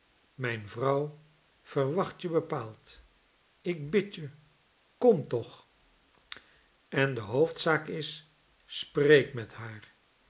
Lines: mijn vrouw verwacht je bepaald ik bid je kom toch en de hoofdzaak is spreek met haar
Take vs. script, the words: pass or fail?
pass